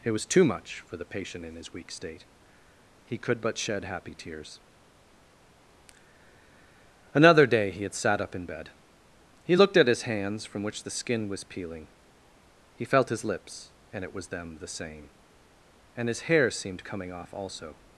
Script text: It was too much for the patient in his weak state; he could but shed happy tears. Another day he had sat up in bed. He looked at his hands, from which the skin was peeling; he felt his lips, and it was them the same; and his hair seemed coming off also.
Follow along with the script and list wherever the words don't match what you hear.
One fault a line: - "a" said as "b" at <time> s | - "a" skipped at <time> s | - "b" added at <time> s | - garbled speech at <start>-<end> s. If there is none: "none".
none